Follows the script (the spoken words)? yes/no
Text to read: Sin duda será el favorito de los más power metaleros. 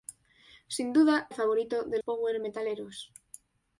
no